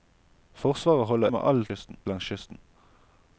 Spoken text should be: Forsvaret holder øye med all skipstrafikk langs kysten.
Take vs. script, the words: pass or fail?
fail